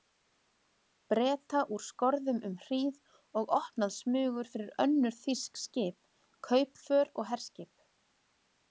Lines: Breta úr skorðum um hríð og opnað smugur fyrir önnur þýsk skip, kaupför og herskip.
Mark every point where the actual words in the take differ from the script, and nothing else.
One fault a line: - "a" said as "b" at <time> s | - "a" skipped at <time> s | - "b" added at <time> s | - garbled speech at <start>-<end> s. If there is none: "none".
none